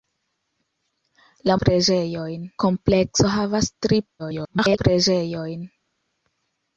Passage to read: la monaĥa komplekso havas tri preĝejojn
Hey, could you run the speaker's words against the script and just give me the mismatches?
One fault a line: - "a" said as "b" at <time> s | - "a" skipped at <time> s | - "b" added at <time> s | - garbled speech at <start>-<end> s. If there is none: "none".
- "monaĥa" said as "preĝejojn" at 1.7 s
- garbled speech at 4.2-4.8 s